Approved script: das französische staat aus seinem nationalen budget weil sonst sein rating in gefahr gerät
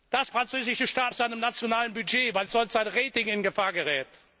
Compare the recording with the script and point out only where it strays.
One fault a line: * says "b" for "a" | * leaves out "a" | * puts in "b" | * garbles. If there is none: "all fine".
all fine